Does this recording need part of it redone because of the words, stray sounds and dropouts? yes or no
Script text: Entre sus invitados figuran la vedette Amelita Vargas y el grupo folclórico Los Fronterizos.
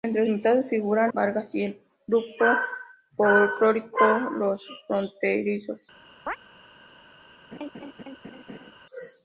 yes